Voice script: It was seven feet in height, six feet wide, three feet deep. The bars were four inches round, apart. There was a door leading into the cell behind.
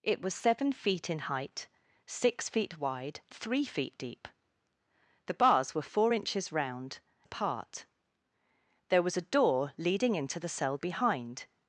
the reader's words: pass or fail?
pass